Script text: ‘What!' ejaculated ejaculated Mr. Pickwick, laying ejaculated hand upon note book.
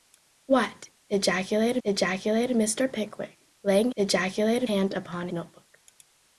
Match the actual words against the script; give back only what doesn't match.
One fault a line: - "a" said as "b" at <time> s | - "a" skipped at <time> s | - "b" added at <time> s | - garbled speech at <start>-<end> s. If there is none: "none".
none